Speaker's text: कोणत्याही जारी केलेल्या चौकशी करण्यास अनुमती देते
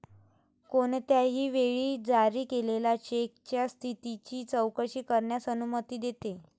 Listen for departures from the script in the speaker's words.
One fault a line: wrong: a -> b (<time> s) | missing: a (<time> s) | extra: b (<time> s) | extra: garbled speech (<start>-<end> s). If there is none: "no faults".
extra: वेळी (1.5 s)
extra: चेकच्या स्थितीची (3.0 s)